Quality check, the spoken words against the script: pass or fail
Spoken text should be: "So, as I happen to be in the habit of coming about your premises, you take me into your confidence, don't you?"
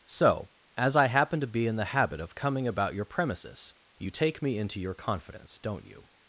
pass